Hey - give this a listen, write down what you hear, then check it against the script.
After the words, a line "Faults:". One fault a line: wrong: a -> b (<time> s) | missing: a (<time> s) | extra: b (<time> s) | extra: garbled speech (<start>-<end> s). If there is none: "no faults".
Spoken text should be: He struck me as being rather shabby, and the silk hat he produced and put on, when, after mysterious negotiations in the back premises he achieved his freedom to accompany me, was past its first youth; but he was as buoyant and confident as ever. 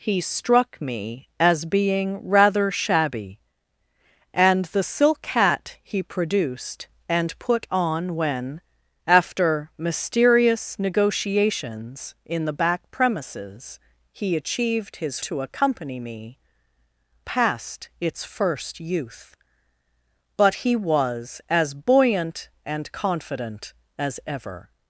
He struck me as being rather shabby, and the silk hat he produced and put on, when, after mysterious negotiations in the back premises he achieved his to accompany me, past its first youth; but he was as buoyant and confident as ever.
Faults:
missing: freedom (15.2 s)
missing: was (16.4 s)